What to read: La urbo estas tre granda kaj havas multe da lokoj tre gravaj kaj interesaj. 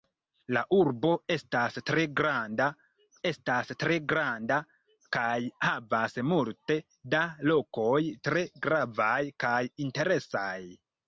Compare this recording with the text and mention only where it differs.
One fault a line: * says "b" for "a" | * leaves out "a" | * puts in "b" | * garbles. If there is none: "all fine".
* puts in "estas tre granda"